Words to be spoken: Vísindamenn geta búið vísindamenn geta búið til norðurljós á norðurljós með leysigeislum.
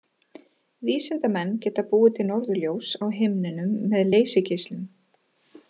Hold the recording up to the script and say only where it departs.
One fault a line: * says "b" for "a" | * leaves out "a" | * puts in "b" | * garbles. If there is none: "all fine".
* leaves out "vísindamenn geta búið"
* says "himninum" for "norðurljós"